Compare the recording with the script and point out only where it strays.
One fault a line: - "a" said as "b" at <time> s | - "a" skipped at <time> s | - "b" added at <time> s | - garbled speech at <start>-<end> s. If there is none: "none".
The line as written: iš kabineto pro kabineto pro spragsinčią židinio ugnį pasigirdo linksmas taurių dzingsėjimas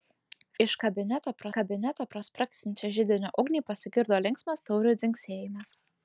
none